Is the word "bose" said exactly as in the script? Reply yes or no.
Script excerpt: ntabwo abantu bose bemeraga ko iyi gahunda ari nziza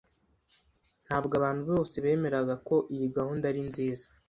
yes